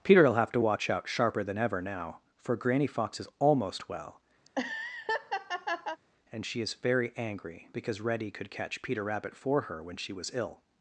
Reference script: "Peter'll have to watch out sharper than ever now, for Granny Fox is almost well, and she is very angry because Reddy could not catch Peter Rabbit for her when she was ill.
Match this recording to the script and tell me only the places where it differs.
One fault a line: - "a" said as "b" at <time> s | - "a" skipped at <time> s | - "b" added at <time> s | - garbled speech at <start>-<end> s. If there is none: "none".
- "not" skipped at 8.5 s